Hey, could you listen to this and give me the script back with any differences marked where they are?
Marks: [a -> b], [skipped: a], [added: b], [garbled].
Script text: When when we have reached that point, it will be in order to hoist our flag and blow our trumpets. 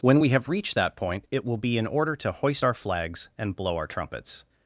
When [skipped: when] we have reached that point, it will be in order to hoist our [flag -> flags] and blow our trumpets.